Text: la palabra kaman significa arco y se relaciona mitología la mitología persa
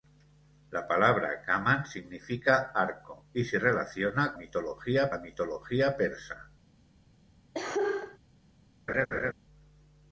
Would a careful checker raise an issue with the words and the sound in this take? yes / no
yes